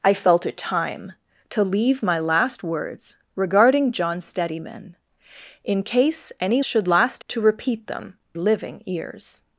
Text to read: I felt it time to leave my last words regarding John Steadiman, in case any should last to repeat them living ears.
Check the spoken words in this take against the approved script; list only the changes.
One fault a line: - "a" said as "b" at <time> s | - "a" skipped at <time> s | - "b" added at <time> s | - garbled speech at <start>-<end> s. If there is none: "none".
none